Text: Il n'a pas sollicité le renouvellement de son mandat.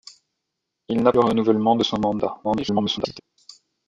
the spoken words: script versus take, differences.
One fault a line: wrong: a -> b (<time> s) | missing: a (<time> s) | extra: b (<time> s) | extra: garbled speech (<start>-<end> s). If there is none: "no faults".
missing: pas sollicité (1.1 s)
extra: garbled speech (2.4-3.2 s)